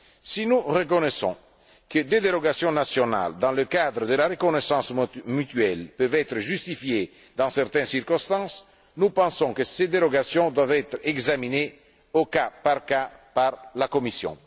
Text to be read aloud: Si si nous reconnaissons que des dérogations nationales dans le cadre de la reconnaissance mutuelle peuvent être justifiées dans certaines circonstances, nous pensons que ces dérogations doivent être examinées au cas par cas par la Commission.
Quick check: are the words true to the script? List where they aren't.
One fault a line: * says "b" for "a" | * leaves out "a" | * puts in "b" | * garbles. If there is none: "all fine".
* leaves out "si"